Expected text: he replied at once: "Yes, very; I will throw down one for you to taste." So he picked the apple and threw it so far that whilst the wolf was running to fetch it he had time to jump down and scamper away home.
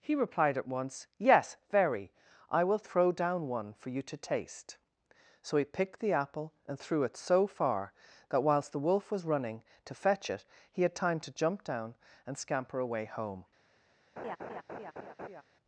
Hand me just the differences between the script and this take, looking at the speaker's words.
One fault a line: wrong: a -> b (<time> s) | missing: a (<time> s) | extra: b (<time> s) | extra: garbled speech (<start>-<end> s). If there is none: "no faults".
no faults